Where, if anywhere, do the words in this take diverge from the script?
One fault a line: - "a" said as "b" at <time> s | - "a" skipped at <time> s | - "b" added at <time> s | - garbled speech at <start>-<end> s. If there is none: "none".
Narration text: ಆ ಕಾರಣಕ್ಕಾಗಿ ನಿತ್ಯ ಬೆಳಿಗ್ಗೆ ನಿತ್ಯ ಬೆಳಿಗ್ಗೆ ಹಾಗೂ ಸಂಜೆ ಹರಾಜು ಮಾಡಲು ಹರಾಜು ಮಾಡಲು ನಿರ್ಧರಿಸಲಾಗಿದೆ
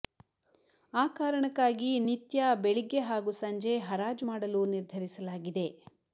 - "ನಿತ್ಯ ಬೆಳಿಗ್ಗೆ" skipped at 3.0 s
- "ಹರಾಜು ಮಾಡಲು" skipped at 4.6 s